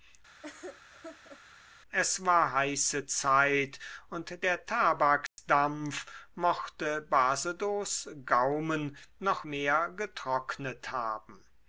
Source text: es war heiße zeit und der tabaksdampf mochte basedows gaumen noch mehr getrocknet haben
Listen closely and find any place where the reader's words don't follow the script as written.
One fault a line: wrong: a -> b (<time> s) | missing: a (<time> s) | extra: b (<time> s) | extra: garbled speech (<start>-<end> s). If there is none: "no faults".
no faults